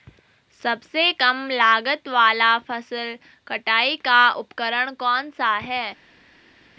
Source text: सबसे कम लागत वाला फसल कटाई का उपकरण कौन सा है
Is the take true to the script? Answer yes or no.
yes